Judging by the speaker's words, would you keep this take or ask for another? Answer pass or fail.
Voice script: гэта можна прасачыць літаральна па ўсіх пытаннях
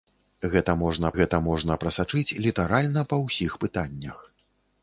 fail